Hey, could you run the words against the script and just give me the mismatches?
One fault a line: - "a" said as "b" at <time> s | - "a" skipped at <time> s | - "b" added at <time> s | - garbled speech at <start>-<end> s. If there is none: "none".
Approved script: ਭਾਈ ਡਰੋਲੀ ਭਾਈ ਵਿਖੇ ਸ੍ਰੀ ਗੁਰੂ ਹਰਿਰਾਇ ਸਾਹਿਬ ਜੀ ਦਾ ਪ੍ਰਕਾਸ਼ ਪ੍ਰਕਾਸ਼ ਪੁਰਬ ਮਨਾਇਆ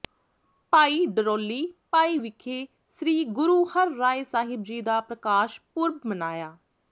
- "ਪ੍ਰਕਾਸ਼" skipped at 5.6 s